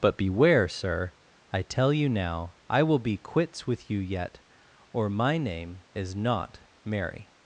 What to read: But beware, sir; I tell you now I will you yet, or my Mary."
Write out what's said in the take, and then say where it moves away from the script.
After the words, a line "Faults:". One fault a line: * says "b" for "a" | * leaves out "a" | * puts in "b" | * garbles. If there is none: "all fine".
But beware, sir; I tell you now I will be quits with you yet, or my name is not Mary."
Faults:
* puts in "be quits with"
* puts in "name is not"